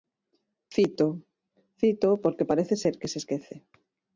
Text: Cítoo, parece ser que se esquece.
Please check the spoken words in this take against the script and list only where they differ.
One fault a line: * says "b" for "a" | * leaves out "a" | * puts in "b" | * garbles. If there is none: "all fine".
* puts in "cítoo porque"